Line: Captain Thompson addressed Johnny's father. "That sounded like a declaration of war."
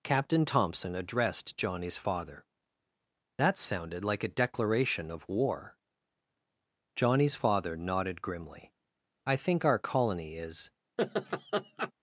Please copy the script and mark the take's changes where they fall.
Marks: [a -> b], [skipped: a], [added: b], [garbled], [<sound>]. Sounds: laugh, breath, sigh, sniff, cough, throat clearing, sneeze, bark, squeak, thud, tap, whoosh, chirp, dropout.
Captain Thompson addressed Johnny's father. "That sounded like a declaration of war." [added: Johnny's father nodded grimly I think our colony is] [laugh]